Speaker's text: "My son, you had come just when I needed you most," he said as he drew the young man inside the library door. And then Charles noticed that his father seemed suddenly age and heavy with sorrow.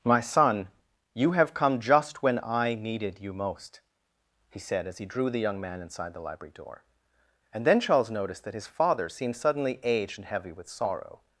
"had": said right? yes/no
no